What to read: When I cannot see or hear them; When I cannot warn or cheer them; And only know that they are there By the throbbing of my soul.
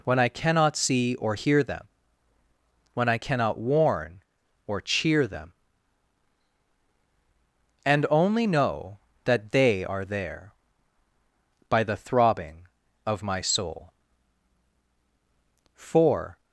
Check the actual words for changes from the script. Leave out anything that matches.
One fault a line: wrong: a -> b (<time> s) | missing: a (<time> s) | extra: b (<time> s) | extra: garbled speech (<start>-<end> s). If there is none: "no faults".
extra: For (15.8 s)